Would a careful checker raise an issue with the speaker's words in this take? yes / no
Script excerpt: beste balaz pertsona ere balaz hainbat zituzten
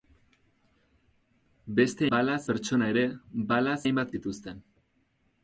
no